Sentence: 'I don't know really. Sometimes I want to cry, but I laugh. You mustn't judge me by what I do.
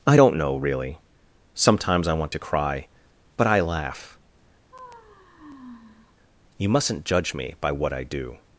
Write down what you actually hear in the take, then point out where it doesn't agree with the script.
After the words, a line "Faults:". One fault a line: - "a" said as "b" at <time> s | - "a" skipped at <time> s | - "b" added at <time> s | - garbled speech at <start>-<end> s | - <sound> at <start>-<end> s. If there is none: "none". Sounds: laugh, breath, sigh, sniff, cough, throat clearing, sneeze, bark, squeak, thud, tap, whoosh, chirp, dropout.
'I don't know really. Sometimes I want to cry, but I laugh. You mustn't judge me by what I do.
Faults:
- sigh at 4.7-6.2 s